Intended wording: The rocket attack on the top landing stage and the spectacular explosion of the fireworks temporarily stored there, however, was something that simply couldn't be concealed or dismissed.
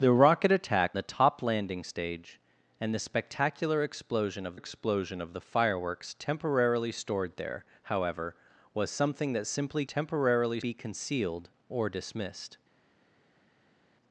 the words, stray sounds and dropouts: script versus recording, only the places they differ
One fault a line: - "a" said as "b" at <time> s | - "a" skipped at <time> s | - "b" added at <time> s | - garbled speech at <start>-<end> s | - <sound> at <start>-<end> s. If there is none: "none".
- "on" skipped at 1.0 s
- "explosion of" added at 4.5 s
- "couldn't" said as "temporarily" at 9.9 s